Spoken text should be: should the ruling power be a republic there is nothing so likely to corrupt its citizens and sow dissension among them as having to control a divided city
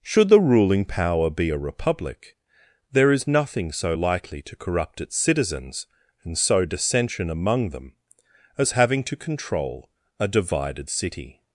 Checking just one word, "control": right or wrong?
right